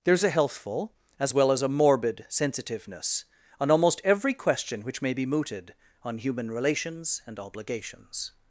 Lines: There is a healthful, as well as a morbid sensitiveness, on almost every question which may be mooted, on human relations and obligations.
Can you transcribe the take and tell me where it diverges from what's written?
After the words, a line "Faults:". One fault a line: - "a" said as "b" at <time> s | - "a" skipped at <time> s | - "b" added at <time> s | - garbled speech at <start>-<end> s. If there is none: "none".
There is a healthful, as well as a morbid sensitiveness, on almost every question which may be mooted, on human relations and obligations.
Faults:
none